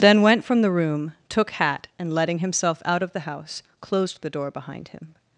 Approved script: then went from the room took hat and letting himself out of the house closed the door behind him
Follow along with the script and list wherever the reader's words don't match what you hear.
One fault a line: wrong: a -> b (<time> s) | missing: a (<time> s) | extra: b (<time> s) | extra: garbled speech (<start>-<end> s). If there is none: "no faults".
no faults